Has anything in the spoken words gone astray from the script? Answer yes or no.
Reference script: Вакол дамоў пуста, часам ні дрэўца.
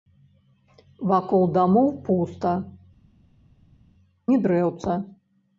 yes